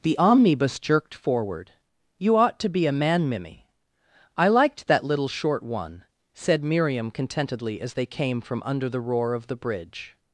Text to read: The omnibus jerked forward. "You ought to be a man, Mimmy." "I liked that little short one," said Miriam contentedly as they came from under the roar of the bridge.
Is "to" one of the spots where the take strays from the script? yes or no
no